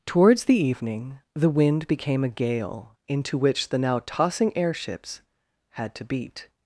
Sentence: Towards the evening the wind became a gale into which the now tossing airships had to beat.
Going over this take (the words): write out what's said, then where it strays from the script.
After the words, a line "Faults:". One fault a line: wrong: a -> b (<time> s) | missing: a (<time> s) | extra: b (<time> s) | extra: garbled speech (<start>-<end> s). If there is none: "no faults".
Towards the evening the wind became a gale into which the now tossing airships had to beat.
Faults:
no faults